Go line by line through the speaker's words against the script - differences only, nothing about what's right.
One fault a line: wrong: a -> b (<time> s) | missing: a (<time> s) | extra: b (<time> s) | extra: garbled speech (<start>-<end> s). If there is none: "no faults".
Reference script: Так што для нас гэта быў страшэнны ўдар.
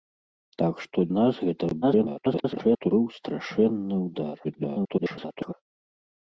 missing: для (1.0 s)
extra: garbled speech (1.8-2.9 s)
extra: garbled speech (4.4-5.5 s)